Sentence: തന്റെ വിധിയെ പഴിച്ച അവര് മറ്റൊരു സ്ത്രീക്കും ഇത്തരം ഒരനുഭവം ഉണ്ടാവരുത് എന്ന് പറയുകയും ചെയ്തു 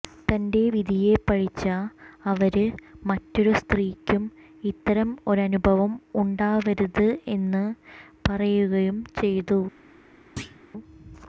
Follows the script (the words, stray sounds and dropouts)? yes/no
no